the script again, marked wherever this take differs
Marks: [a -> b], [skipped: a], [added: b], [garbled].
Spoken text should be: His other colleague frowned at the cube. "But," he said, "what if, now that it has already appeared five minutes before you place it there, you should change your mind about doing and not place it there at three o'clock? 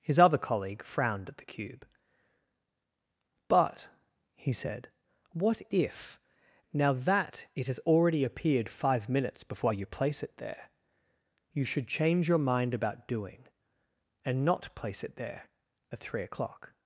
His other colleague frowned at the cube. "But," he said, "what if, now that it has already appeared five minutes before you place it there, you should change your mind about doing and not place it there at three o'clock?